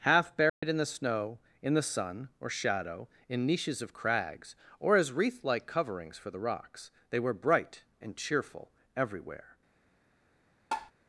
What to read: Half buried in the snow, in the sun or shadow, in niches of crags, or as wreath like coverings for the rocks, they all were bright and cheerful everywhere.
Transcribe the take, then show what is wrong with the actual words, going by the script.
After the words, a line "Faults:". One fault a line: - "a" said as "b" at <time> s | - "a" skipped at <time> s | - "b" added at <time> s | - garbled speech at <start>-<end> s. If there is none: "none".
Half buried in the snow, in the sun or shadow, in niches of crags, or as wreath like coverings for the rocks, they were bright and cheerful everywhere.
Faults:
- "all" skipped at 7.2 s